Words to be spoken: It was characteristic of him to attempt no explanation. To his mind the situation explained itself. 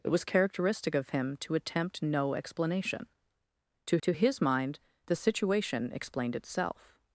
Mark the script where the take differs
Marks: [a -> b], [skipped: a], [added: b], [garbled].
It was characteristic of him to attempt no explanation. To [added: to] his mind the situation explained itself.